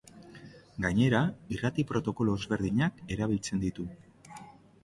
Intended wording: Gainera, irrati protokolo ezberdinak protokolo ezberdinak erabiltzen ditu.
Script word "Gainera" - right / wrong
right